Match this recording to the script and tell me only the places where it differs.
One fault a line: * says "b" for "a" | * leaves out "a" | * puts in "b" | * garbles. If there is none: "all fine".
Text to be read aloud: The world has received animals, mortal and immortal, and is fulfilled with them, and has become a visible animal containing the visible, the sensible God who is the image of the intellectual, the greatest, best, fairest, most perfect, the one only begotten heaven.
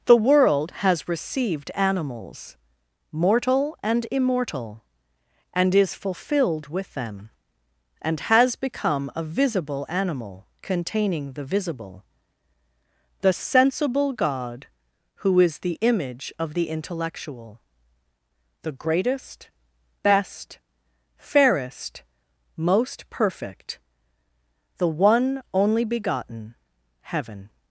all fine